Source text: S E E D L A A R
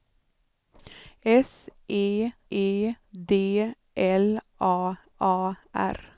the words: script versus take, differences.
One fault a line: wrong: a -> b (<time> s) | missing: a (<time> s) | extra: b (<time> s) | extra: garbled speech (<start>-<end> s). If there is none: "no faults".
no faults